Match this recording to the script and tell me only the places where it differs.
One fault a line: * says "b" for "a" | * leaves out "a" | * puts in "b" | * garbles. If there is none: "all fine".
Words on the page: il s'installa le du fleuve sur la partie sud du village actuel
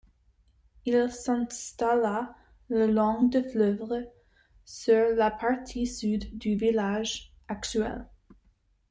* puts in "long"